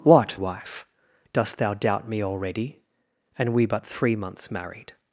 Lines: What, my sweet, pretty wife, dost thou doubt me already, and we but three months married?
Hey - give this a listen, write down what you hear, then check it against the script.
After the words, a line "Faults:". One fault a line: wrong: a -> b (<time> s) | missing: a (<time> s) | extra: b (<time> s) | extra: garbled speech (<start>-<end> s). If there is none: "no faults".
What, wife, dost thou doubt me already, and we but three months married?
Faults:
missing: my sweet pretty (0.4 s)